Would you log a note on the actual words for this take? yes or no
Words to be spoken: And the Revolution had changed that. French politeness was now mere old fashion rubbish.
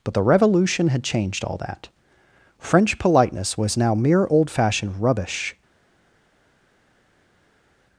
yes